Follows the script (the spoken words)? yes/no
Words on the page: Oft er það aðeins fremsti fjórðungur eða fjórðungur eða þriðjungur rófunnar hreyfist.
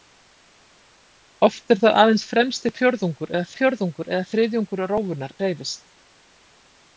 yes